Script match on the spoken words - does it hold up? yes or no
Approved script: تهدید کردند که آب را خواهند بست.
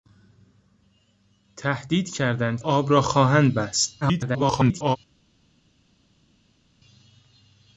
no